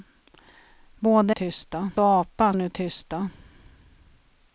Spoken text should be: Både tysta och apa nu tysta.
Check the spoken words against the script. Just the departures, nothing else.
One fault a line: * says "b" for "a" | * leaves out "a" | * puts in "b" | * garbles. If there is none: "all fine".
all fine